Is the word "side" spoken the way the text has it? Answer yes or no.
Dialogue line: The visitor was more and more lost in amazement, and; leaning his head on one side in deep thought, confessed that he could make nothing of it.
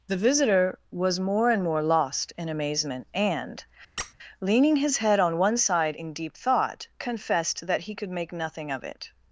yes